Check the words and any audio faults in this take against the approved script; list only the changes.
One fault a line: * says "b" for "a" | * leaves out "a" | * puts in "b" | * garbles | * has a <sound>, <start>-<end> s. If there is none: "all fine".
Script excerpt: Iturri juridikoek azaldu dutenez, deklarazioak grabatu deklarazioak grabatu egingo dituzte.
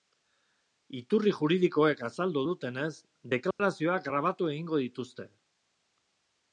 * has a dropout, 3.5-3.6 s
* leaves out "deklarazioak grabatu"